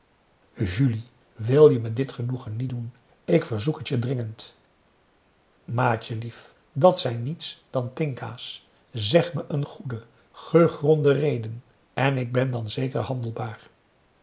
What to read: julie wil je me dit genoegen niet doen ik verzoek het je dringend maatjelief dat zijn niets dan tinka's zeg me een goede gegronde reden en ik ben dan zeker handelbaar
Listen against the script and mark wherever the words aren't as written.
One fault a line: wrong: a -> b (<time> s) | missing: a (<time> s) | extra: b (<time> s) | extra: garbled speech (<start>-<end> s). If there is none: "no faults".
no faults